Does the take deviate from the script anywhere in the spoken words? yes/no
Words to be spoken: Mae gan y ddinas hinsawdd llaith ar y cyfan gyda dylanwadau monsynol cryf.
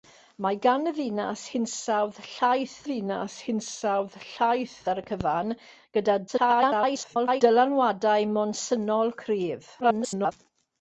yes